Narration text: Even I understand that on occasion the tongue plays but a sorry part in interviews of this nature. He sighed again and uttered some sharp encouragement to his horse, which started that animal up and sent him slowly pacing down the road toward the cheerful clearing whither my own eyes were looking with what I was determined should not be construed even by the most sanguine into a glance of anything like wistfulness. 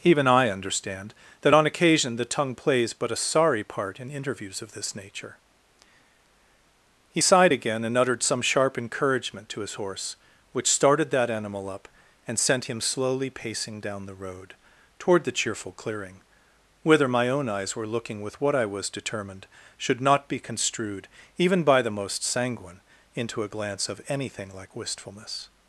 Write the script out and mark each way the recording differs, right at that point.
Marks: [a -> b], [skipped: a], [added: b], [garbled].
Even I understand that on occasion the tongue plays but a sorry part in interviews of this nature. He sighed again and uttered some sharp encouragement to his horse, which started that animal up and sent him slowly pacing down the road toward the cheerful clearing whither my own eyes were looking with what I was determined should not be construed even by the most sanguine into a glance of anything like wistfulness.